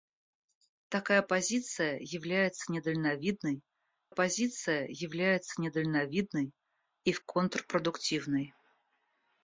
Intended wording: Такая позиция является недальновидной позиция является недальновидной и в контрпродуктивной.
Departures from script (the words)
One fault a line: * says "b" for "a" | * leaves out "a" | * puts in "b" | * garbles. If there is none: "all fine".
all fine